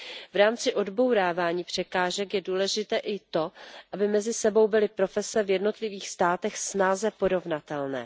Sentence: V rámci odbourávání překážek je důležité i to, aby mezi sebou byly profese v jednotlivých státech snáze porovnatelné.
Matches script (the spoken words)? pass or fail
pass